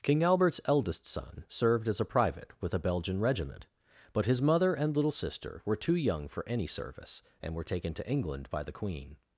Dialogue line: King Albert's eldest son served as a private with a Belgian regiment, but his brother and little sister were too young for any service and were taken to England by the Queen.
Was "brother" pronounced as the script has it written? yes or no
no